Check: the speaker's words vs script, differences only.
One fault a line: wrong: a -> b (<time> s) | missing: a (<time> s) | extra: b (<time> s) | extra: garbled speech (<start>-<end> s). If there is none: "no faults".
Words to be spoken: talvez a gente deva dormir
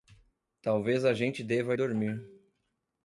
no faults